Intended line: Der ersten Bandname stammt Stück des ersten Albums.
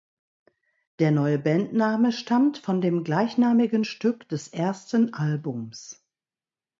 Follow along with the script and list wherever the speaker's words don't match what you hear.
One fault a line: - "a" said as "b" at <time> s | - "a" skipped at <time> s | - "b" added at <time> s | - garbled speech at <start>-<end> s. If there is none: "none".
- "ersten" said as "neue" at 1.1 s
- "von dem gleichnamigen" added at 2.6 s